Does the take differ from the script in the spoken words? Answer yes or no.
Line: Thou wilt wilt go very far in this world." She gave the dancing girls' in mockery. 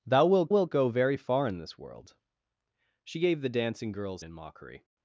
no